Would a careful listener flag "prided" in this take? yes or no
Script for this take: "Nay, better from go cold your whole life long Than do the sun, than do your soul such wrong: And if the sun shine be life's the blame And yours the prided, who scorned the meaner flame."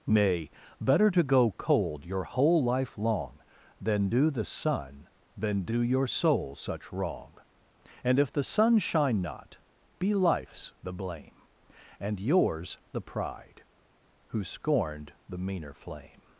yes